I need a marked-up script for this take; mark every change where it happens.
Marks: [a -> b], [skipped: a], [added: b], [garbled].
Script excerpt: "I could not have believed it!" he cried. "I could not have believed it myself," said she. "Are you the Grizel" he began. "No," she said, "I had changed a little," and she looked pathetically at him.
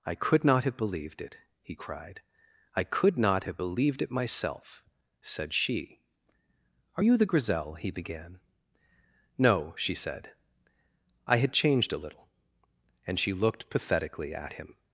"I could not have believed it!" he cried. "I could not have believed it myself," said she. "Are you the Grizel" he began. "No," she said, "I had changed a little," and she looked pathetically at him.